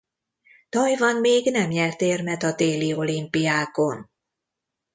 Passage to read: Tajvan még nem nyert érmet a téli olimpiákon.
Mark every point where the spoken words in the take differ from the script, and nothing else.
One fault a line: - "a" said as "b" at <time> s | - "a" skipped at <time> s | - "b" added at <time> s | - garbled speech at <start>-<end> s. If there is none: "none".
none